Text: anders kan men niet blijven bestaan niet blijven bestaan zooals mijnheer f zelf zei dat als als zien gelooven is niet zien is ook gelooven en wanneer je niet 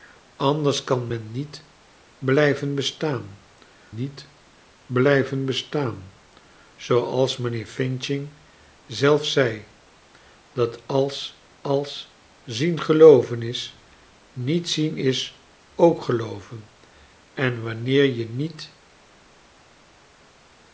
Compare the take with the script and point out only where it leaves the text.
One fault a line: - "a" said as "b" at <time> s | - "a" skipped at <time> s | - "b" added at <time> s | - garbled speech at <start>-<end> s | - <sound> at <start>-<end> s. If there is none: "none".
none